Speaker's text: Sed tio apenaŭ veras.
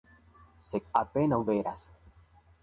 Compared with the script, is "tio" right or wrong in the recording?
wrong